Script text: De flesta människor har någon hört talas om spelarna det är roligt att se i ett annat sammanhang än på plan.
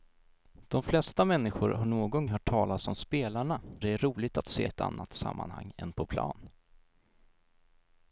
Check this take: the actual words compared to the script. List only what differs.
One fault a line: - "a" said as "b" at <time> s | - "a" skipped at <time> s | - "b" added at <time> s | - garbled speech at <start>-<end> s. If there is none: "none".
none